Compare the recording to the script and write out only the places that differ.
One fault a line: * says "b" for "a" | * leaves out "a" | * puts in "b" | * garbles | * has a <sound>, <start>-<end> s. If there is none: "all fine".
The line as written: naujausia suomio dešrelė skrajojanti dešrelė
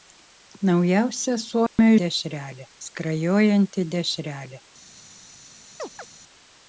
* has a dropout, 1.7-1.8 s
* has a chirp, 5.8-6.1 s